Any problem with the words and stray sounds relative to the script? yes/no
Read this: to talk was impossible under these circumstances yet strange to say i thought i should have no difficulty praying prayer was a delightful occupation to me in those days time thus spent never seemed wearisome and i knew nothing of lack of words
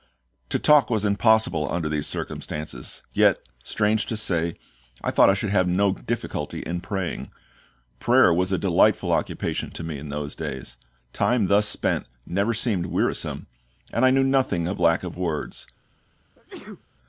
yes